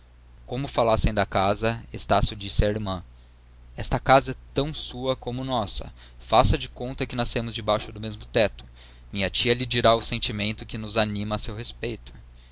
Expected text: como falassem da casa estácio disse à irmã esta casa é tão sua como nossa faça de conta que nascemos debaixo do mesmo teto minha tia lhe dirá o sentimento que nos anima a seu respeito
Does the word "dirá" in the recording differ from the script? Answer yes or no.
no